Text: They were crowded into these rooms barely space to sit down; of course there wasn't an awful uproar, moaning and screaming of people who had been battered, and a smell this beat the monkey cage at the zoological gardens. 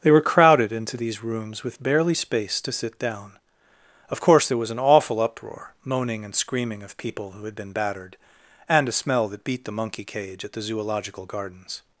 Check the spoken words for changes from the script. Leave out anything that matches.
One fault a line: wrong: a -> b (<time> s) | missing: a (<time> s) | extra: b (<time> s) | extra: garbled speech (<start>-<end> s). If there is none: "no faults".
extra: with (1.6 s)
wrong: wasn't -> was (4.6 s)
wrong: this -> that (9.3 s)